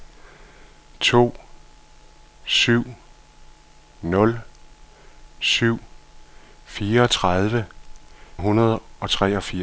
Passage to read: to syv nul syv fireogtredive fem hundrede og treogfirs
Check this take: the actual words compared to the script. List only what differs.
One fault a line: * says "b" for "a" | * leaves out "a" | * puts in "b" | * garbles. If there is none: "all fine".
* leaves out "fem"